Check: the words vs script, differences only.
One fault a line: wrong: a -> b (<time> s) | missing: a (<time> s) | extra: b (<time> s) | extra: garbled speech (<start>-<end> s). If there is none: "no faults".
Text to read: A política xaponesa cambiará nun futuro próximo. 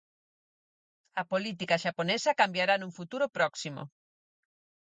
no faults